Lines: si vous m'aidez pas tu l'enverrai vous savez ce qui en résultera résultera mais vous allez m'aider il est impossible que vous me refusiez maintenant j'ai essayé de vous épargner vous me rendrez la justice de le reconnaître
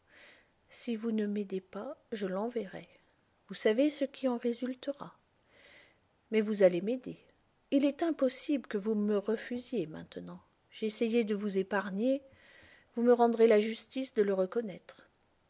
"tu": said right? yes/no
no